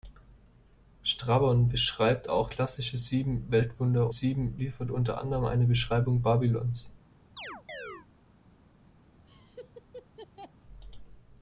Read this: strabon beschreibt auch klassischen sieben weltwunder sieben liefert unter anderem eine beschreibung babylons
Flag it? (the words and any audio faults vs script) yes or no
yes